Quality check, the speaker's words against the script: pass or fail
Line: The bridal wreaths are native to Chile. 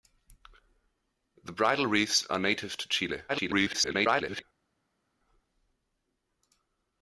fail